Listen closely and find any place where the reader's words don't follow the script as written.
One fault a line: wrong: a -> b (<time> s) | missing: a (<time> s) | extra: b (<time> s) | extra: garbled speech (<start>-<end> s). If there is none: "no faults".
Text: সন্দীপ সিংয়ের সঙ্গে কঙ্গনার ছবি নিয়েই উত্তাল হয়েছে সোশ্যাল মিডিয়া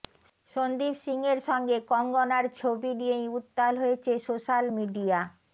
no faults